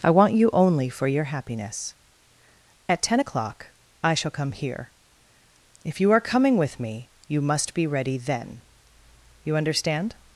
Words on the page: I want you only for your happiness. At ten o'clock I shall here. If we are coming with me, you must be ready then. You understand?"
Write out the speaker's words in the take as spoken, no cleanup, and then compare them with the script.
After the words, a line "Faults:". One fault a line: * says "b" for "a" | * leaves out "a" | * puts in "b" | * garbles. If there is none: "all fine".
I want you only for your happiness. At ten o'clock I shall come here. If you are coming with me, you must be ready then. You understand?"
Faults:
* puts in "come"
* says "you" for "we"